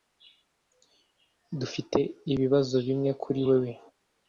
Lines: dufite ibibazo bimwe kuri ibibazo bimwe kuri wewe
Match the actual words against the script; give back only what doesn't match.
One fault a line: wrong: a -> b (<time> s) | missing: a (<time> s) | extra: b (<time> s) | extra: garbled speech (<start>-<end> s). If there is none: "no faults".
missing: ibibazo bimwe kuri (3.4 s)